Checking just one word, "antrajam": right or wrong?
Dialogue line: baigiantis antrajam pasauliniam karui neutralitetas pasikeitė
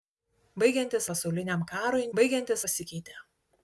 wrong